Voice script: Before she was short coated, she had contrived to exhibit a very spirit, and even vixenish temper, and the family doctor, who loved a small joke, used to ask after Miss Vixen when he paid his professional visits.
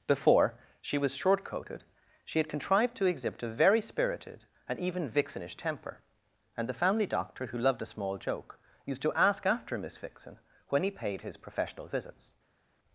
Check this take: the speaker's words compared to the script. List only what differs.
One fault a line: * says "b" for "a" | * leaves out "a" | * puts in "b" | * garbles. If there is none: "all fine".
* says "spirited" for "spirit"